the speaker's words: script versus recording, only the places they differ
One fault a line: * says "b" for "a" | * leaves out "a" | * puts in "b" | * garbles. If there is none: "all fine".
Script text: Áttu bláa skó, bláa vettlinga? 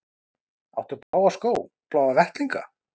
all fine